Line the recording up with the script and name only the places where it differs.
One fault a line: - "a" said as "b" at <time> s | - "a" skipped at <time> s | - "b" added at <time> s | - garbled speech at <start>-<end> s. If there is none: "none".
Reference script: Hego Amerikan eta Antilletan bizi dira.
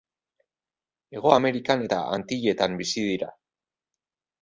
none